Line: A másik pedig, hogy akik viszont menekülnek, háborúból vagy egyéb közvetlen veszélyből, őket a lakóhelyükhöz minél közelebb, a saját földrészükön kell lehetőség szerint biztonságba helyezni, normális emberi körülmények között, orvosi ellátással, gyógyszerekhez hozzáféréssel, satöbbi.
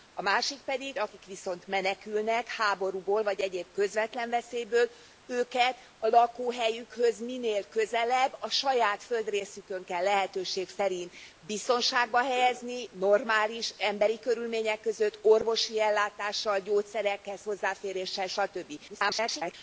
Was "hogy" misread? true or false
true